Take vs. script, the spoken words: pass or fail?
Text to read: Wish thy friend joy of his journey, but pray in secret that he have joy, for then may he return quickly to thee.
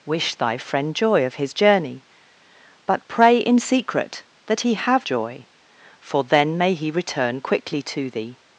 pass